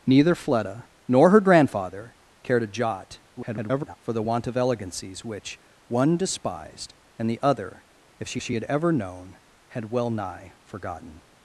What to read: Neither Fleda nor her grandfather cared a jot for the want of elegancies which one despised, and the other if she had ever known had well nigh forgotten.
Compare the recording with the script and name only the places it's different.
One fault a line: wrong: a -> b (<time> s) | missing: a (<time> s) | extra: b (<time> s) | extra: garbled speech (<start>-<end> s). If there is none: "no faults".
extra: garbled speech (3.4-4.0 s)
extra: she (8.4 s)